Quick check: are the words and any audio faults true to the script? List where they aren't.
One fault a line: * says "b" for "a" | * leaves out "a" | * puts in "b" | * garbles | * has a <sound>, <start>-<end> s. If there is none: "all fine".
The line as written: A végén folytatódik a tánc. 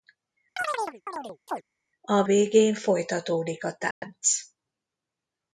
* has a chirp, 0.6-1.6 s
* has a dropout, 3.9-4.0 s